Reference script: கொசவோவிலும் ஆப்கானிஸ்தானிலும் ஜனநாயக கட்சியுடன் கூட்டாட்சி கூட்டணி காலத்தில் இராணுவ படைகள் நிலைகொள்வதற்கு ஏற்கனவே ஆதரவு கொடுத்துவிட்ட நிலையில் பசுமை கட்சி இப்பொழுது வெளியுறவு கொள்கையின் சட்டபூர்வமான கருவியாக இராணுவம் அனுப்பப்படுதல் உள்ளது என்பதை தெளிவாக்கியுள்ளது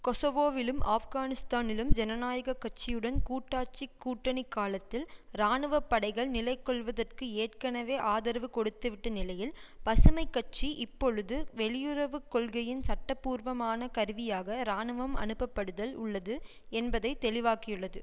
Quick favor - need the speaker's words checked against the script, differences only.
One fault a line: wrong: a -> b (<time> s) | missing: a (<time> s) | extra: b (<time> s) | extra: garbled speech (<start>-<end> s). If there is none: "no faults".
no faults